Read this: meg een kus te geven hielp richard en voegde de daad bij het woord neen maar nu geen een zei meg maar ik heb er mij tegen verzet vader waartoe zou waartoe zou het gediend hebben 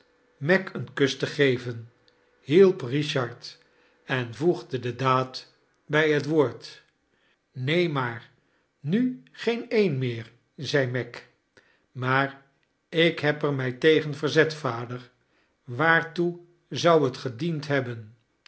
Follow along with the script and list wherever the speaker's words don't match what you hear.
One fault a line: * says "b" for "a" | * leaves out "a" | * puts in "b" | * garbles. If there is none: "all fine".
* puts in "meer"
* leaves out "waartoe zou"